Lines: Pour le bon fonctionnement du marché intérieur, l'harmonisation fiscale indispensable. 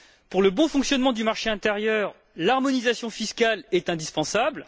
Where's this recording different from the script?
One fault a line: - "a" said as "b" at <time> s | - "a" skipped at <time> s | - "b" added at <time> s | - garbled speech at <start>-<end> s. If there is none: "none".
- "est" added at 3.7 s